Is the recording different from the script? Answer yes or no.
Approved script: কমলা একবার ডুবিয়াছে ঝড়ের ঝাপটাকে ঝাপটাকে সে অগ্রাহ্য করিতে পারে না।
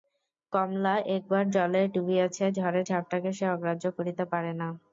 yes